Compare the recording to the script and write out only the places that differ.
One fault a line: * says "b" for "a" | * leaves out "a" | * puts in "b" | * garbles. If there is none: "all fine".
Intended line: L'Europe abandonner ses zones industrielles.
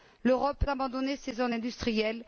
all fine